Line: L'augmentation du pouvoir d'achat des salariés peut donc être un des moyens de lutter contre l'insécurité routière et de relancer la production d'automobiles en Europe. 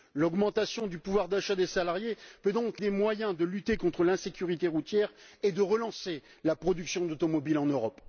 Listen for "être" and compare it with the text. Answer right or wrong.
wrong